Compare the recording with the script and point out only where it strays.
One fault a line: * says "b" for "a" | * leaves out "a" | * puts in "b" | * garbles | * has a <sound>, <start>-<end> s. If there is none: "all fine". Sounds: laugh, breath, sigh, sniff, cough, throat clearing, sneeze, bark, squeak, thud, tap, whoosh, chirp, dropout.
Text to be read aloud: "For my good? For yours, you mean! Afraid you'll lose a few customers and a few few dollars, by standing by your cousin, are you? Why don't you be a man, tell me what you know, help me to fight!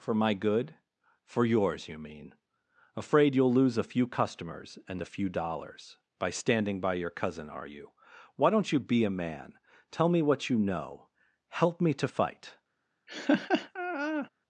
* leaves out "few"
* has a laugh, 13.1-14.3 s